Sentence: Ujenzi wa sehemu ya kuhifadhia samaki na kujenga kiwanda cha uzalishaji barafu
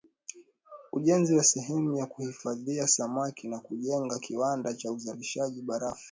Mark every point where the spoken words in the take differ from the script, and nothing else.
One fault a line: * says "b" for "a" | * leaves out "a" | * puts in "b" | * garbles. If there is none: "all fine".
all fine